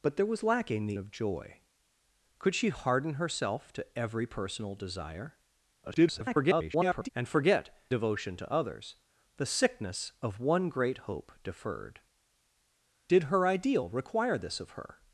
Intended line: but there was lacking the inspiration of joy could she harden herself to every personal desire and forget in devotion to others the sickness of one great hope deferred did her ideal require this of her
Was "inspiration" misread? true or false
true